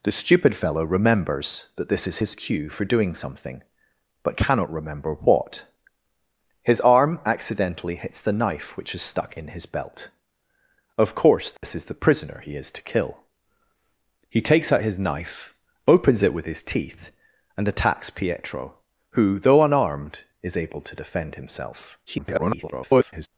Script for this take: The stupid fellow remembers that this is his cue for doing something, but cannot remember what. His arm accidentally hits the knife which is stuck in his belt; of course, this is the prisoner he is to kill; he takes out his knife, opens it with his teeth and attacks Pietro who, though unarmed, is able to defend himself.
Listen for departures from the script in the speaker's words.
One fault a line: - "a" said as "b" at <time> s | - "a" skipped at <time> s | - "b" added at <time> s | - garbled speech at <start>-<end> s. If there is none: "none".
- garbled speech at 22.1-23.3 s